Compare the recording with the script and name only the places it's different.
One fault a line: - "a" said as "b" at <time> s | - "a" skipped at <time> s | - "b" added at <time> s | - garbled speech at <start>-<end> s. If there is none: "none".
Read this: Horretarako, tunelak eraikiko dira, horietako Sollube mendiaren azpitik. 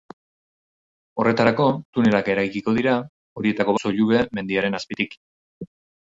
none